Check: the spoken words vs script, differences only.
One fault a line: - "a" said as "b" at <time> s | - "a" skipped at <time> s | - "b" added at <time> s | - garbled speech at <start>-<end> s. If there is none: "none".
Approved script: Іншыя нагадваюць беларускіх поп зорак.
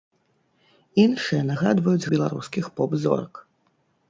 none